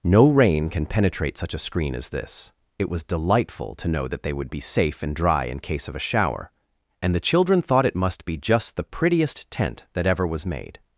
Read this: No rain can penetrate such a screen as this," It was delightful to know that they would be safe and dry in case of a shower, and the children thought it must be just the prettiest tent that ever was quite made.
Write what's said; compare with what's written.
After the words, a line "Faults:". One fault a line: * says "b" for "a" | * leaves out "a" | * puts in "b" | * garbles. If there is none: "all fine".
No rain can penetrate such a screen as this," It was delightful to know that they would be safe and dry in case of a shower, and the children thought it must be just the prettiest tent that ever was made.
Faults:
* leaves out "quite"